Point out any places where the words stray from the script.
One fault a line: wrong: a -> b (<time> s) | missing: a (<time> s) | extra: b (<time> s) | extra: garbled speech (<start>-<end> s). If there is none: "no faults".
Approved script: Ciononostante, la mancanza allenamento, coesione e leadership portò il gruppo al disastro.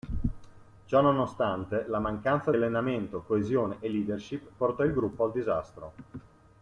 no faults